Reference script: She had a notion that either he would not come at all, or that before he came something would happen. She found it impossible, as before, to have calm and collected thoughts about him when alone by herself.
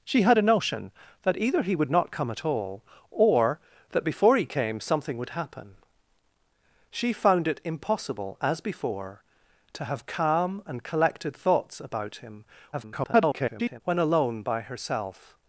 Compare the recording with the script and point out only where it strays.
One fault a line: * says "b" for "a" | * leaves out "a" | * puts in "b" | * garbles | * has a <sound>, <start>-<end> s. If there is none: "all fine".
* garbles